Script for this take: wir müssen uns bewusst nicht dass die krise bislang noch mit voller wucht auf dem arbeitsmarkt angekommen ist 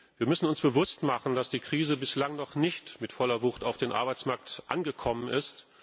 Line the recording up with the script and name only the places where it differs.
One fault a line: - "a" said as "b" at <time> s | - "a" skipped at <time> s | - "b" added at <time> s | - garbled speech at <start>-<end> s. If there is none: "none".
- "nicht" said as "machen" at 1.0 s
- "nicht" added at 2.5 s